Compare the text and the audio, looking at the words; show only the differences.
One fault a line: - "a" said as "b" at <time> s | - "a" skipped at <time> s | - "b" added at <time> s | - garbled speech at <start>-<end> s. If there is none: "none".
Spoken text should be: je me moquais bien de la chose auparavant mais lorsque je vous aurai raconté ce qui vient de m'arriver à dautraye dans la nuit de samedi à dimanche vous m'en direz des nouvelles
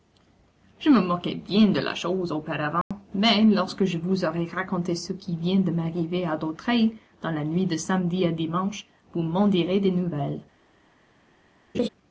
none